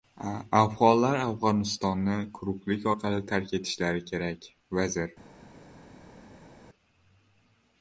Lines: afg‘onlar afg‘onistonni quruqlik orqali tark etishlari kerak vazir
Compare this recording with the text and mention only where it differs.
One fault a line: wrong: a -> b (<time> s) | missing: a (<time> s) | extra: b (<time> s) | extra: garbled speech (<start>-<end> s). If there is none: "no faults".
no faults